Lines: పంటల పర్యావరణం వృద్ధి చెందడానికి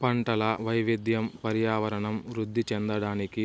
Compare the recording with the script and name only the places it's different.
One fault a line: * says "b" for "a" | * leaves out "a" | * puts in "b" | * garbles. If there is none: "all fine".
* puts in "వైవిధ్యం"